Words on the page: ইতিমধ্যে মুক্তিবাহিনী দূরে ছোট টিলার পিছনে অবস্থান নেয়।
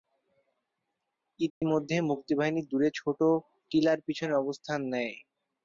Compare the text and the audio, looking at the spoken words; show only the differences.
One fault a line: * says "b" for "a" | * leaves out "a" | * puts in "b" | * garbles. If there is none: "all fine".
all fine